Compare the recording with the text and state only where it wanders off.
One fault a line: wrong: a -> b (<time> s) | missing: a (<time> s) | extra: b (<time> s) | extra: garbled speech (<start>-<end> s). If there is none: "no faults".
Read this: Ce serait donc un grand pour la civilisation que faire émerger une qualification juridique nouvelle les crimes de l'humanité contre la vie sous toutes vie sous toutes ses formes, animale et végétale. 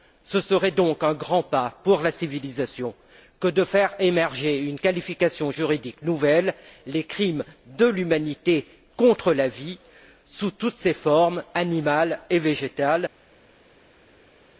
extra: pas (1.4 s)
extra: de (3.5 s)
missing: vie sous toutes (10.7 s)